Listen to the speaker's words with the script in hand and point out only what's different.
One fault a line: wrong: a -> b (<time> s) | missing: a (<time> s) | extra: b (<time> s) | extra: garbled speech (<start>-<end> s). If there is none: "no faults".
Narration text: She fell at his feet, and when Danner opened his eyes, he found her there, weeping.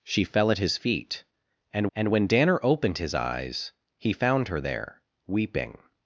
extra: and (1.9 s)